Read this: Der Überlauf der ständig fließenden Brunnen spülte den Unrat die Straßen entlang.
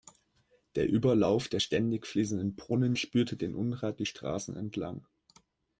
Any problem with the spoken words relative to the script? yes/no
no